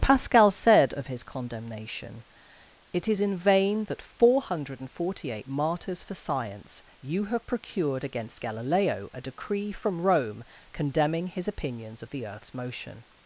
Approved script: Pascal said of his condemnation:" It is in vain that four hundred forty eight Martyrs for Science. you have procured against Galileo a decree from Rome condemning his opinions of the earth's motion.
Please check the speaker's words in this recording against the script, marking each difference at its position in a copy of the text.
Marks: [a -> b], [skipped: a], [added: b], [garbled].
Pascal said of his condemnation:" It is in vain that four hundred forty eight Martyrs for Science. you have procured against Galileo a decree from Rome condemning his opinions of the earth's motion.